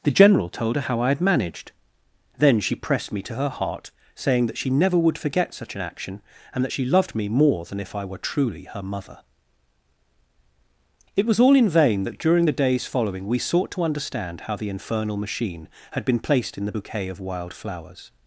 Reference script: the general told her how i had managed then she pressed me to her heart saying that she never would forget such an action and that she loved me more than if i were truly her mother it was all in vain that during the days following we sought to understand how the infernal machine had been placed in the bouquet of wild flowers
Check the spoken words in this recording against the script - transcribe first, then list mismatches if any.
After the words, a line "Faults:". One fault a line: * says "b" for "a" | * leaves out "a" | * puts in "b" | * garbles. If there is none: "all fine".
the general told her how i had managed then she pressed me to her heart saying that she never would forget such an action and that she loved me more than if i were truly her mother it was all in vain that during the days following we sought to understand how the infernal machine had been placed in the bouquet of wild flowers
Faults:
all fine